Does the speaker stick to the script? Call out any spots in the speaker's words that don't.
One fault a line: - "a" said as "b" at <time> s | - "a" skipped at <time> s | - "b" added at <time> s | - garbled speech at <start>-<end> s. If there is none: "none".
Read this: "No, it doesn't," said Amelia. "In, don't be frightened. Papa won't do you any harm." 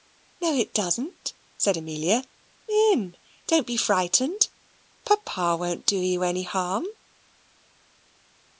none